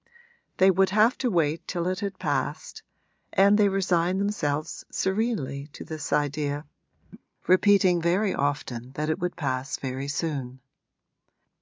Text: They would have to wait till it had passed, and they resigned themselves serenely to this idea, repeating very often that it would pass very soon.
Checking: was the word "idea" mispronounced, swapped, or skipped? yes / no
no